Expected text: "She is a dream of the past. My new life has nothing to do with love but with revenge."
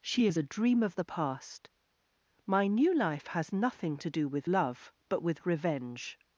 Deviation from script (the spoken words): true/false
false